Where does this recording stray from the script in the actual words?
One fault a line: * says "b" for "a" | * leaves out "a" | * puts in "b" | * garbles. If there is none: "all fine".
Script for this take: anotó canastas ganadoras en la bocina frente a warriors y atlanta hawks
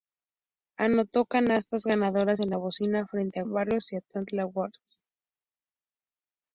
all fine